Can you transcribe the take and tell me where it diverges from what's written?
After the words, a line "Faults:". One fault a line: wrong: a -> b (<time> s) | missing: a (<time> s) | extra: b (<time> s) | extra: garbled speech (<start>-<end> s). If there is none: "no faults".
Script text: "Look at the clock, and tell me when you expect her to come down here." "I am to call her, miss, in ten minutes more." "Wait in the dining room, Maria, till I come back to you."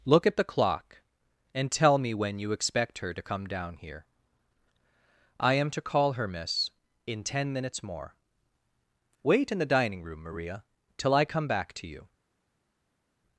"Look at the clock, and tell me when you expect her to come down here." "I am to call her, miss, in ten minutes more." "Wait in the dining room, Maria, till I come back to you."
Faults:
no faults